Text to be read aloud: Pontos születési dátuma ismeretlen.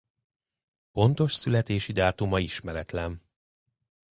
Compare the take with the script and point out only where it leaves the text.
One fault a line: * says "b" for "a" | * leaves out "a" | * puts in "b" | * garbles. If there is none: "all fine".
all fine